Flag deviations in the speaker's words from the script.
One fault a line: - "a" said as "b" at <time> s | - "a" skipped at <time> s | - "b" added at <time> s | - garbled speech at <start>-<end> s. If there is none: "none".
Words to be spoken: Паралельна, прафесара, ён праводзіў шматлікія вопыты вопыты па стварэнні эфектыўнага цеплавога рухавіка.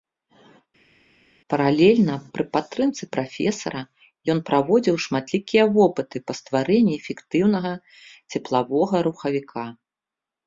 - "пры падтрымцы" added at 2.3 s
- "вопыты" skipped at 6.2 s